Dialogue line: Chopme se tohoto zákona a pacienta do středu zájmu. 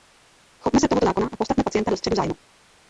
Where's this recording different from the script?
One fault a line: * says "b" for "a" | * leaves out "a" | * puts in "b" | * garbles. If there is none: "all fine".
* puts in "postavme"